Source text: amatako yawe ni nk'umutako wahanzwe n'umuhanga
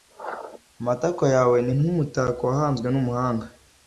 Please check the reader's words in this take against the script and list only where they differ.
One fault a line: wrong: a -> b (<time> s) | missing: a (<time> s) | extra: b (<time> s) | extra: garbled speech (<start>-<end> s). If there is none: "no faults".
no faults